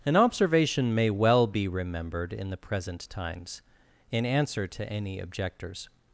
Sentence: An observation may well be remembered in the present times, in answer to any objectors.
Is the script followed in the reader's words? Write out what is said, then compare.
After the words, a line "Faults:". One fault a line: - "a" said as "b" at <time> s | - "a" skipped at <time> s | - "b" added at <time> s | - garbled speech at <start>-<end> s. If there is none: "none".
An observation may well be remembered in the present times, in answer to any objectors.
Faults:
none